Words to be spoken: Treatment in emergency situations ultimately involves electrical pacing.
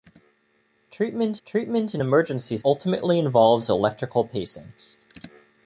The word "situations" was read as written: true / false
false